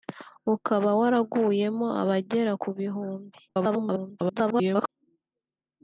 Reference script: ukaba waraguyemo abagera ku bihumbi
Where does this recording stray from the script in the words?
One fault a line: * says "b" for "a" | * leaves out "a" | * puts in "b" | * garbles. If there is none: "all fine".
* garbles